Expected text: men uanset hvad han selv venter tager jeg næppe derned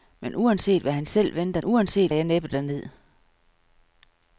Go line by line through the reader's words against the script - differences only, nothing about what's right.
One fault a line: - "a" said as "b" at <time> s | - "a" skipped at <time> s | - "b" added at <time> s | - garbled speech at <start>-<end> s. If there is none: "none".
- "tager" said as "uanset" at 1.6 s